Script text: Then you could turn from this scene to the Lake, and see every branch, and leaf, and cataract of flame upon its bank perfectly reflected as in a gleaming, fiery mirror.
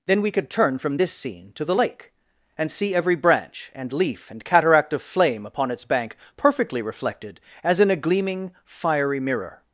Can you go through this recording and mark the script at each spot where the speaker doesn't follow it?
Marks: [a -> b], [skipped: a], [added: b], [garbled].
Then [you -> we] could turn from this scene to the Lake, and see every branch, and leaf, and cataract of flame upon its bank perfectly reflected as in a gleaming, fiery mirror.